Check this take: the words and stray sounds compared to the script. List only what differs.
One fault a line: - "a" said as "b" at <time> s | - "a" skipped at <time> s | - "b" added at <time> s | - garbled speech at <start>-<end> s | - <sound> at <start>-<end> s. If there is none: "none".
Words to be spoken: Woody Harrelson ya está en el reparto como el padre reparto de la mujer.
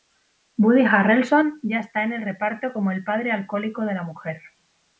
- "reparto" said as "alcohólico" at 3.3 s